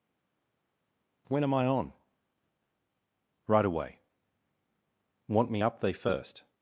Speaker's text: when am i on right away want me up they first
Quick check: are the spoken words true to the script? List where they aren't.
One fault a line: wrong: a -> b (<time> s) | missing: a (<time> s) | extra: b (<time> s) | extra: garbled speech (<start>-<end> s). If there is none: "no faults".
no faults